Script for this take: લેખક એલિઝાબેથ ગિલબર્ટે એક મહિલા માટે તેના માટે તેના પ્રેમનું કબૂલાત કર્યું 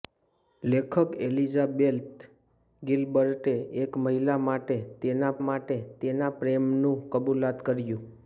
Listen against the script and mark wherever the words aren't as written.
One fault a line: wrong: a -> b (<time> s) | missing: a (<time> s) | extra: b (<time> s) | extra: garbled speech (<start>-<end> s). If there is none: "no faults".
no faults